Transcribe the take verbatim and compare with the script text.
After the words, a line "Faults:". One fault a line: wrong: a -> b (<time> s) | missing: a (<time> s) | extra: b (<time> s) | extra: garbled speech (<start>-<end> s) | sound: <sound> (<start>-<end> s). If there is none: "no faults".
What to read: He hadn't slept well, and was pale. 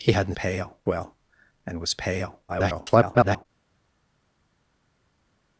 He hadn't pale well, and was pale. [garbled]
Faults:
wrong: slept -> pale (0.3 s)
extra: garbled speech (2.5-3.5 s)